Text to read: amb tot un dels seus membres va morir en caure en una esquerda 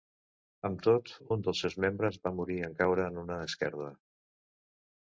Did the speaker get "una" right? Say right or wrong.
right